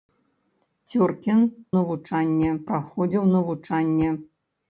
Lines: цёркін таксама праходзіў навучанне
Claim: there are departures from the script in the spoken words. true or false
true